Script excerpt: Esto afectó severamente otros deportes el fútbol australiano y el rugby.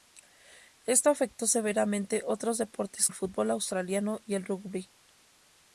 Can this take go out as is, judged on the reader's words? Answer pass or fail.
pass